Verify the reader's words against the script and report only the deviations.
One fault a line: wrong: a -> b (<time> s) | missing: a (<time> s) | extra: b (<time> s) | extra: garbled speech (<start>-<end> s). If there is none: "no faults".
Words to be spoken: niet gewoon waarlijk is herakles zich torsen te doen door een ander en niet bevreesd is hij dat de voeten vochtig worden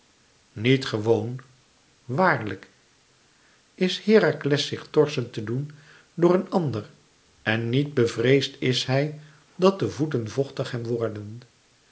extra: hem (10.7 s)